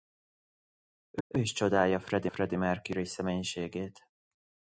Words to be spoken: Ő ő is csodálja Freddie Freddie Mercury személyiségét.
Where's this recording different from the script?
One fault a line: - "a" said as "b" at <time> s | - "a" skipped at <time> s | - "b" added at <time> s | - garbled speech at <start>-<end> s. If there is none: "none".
none